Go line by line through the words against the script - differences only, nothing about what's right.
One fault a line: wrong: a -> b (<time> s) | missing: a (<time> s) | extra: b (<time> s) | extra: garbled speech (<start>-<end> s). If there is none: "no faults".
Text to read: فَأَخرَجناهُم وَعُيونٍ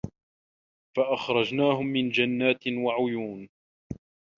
extra: مِن جَنّاتٍ (1.8 s)